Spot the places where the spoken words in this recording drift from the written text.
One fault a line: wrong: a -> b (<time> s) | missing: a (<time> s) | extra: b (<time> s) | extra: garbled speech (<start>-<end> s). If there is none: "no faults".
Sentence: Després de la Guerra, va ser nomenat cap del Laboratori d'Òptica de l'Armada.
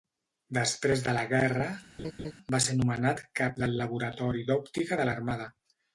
no faults